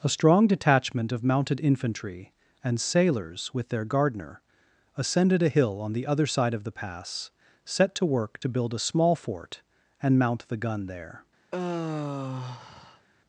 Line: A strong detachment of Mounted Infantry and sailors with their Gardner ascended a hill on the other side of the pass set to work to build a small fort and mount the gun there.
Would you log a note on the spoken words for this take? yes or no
no